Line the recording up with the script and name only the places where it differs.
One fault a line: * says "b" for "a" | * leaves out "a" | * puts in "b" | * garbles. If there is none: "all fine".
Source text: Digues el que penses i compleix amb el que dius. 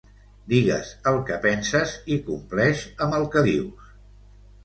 all fine